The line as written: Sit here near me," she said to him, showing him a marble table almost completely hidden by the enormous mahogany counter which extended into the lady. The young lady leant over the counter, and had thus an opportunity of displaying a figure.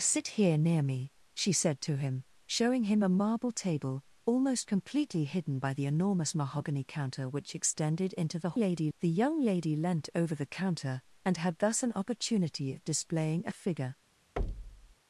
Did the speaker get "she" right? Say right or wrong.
right